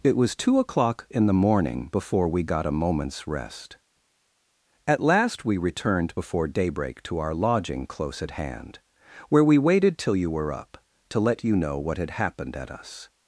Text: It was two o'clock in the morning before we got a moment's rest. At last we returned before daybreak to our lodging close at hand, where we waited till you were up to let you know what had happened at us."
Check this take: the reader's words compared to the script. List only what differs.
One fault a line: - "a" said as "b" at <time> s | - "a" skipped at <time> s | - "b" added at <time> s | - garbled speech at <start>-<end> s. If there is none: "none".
none